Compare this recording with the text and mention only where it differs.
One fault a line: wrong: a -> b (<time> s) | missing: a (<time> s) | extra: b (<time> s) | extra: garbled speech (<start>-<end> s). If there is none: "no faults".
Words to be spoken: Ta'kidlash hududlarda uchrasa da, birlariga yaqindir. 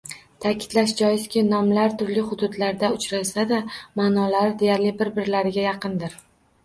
extra: joizki nomlar turli (1.0 s)
extra: ma'nolari deyarli bir (4.0 s)